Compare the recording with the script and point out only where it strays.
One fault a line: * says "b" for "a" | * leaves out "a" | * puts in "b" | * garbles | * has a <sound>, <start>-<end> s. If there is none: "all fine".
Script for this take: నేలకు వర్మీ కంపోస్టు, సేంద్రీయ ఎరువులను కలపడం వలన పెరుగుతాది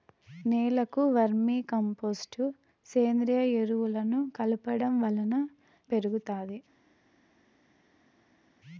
all fine